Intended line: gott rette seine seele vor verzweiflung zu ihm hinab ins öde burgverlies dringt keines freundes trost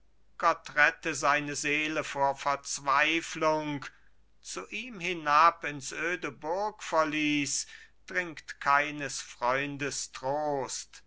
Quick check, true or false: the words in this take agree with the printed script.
true